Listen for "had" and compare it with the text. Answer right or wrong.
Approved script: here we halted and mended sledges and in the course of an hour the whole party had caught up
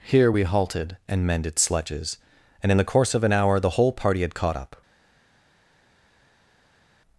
right